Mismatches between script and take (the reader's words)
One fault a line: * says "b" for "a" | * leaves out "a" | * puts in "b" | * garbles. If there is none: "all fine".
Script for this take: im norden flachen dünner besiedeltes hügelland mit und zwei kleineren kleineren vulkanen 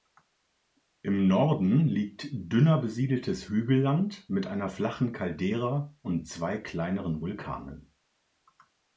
* says "liegt" for "flachen"
* puts in "einer flachen caldera"
* leaves out "kleineren"